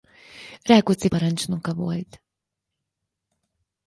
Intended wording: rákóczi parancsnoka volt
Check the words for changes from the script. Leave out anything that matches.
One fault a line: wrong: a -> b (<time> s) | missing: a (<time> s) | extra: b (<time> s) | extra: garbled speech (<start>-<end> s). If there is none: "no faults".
no faults